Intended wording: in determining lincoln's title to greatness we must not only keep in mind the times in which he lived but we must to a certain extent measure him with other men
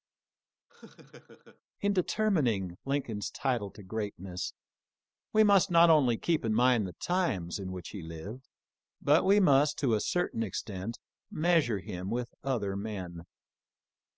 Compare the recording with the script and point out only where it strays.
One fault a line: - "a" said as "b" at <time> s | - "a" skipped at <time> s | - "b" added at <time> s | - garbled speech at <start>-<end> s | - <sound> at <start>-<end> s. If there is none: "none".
- laugh at 0.7-1.6 s